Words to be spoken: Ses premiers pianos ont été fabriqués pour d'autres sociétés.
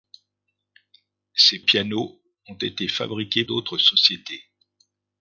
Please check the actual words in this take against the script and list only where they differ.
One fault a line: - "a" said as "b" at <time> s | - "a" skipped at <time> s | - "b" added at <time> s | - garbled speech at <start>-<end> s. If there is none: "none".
- "premiers" skipped at 1.6 s
- "pour" skipped at 3.4 s